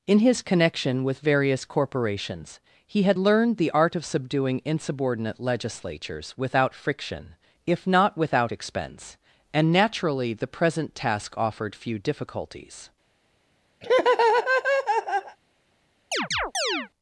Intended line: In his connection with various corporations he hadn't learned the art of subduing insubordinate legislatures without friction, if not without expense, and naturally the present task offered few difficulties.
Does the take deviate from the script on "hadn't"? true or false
true